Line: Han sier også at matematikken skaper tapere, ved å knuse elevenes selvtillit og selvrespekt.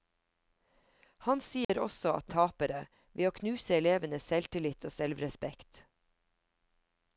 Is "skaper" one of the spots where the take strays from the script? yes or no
yes